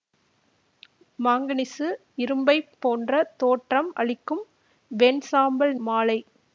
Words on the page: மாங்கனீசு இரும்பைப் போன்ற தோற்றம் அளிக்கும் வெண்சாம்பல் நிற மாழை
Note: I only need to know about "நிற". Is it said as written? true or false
false